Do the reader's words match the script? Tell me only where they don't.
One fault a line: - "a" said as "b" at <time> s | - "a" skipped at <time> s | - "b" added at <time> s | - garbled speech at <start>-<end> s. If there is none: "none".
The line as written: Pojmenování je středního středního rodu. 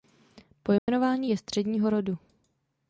- "středního" skipped at 1.9 s